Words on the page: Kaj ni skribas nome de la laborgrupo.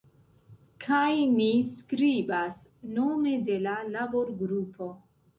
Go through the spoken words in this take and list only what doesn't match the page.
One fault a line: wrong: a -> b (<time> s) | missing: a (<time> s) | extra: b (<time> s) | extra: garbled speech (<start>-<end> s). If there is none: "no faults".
no faults